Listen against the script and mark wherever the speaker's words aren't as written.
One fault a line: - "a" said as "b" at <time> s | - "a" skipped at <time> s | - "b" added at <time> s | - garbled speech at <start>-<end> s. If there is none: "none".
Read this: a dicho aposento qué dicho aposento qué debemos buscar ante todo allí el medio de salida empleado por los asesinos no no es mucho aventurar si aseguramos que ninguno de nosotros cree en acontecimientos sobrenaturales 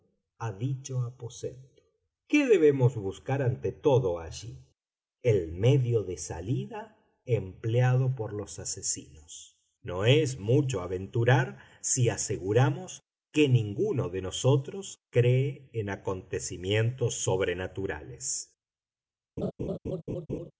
- "dicho aposento qué" skipped at 2.5 s
- "no" skipped at 10.1 s